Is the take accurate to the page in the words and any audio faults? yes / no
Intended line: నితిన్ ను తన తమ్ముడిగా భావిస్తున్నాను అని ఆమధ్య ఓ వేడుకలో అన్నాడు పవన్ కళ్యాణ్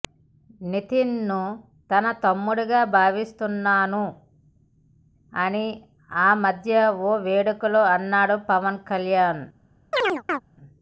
no